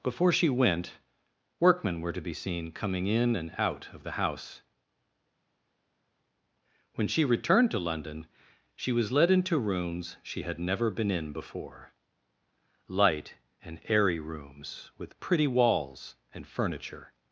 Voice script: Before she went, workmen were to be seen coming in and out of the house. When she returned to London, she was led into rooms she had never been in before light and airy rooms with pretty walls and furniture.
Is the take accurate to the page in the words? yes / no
yes